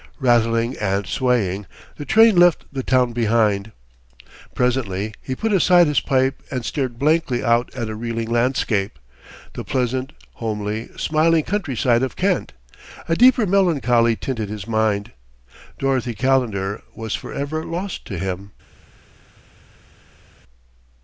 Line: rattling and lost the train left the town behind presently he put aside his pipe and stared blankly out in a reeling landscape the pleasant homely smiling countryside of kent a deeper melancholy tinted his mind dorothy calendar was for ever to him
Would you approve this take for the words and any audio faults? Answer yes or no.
no